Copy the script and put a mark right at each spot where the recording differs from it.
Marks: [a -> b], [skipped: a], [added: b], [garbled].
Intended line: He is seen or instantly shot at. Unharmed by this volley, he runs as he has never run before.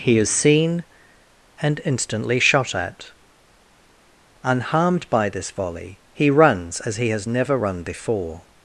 He is seen [or -> and] instantly shot at. Unharmed by this volley, he runs as he has never run before.